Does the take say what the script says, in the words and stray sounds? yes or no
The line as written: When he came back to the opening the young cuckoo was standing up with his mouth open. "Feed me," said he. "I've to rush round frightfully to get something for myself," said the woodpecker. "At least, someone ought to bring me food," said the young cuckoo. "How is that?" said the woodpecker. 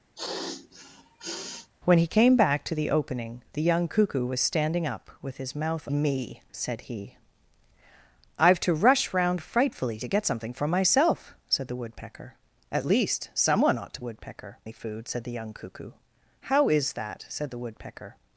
no